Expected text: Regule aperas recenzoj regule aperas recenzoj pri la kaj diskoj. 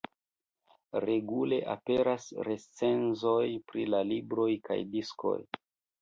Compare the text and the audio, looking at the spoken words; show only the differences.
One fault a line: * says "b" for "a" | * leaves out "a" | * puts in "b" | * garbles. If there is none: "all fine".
* leaves out "regule aperas recenzoj"
* puts in "libroj"